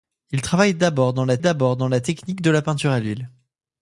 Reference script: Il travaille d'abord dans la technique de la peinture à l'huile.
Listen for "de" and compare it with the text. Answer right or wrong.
right